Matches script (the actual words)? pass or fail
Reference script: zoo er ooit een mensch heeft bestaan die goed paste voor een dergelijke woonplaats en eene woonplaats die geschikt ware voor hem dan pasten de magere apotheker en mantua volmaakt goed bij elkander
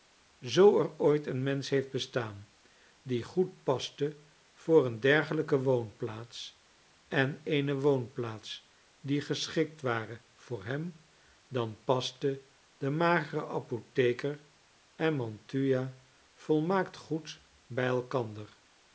pass